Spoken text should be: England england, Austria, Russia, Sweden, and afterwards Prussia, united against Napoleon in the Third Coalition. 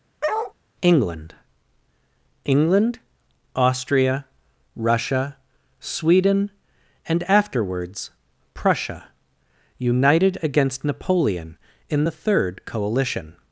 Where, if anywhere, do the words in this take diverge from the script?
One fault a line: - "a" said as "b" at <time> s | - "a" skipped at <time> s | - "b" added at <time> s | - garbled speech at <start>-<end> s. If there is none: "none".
none